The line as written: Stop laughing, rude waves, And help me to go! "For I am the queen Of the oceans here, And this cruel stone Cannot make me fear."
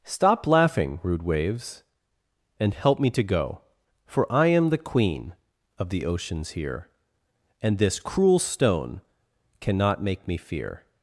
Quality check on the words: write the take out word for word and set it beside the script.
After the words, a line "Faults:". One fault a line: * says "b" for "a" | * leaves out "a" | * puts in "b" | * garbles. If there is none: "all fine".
Stop laughing, rude waves, And help me to go! "For I am the queen Of the oceans here, And this cruel stone Cannot make me fear."
Faults:
all fine